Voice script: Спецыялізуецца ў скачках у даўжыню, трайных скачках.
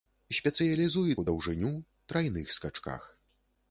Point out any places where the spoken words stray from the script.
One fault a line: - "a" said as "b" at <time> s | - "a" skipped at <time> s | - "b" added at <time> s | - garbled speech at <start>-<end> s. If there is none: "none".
- "ў скачках" skipped at 1.2 s